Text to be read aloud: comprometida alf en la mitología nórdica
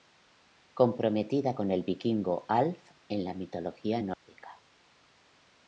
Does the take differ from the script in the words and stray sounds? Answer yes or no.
yes